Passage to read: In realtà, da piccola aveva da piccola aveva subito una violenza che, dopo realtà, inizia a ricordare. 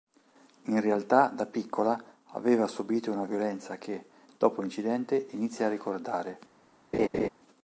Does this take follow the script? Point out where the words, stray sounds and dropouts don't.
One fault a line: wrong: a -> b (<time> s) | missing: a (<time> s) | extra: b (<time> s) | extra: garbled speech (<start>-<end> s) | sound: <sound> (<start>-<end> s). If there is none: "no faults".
missing: da piccola aveva (2.6 s)
wrong: realtà -> l'incidente (4.6 s)
sound: laugh (6.9-7.3 s)